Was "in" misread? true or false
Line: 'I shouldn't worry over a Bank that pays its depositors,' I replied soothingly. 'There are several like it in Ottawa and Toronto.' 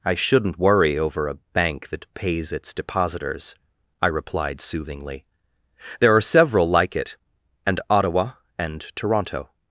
true